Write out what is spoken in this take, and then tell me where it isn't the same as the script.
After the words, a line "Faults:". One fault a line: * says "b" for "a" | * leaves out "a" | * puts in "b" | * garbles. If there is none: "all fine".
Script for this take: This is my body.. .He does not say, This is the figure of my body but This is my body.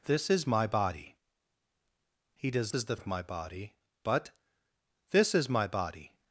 This is my body.. .He does is the of my body but This is my body.
Faults:
* leaves out "not say This"
* leaves out "figure"